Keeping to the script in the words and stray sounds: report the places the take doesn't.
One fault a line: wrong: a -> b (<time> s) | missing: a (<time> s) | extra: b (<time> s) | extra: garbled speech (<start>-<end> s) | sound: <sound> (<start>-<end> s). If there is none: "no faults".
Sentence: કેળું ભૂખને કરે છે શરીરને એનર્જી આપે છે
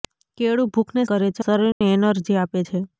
sound: dropout (1.7-1.8 s)